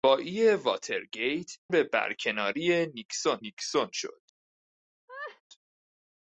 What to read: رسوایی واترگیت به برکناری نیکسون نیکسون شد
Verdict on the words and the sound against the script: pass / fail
fail